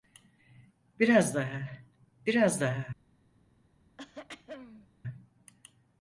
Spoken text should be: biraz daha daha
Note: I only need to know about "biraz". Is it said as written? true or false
true